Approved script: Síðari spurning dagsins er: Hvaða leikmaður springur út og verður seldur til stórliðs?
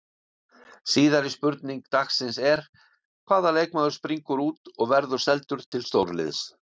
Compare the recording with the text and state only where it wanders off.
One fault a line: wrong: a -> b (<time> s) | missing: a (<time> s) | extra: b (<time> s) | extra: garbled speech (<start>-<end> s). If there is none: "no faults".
no faults